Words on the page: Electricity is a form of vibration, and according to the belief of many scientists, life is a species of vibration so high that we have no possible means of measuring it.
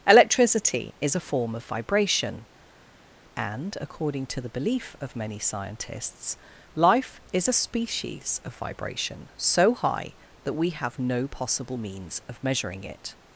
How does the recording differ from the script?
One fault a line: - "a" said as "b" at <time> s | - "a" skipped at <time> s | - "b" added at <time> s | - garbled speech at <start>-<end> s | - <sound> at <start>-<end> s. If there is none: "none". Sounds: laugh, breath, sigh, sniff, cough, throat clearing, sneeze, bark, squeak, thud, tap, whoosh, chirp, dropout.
none